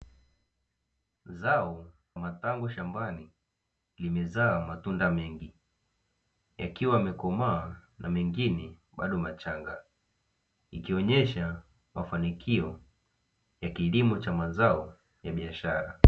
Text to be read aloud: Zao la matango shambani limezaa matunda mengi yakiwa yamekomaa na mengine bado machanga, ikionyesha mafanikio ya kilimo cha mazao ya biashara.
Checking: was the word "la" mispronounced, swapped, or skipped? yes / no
yes